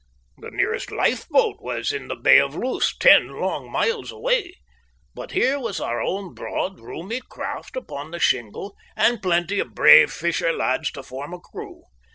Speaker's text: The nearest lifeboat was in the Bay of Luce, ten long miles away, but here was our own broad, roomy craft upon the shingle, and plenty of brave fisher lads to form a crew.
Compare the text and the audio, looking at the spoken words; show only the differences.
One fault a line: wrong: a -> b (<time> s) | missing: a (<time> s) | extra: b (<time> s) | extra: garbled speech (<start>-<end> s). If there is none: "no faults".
no faults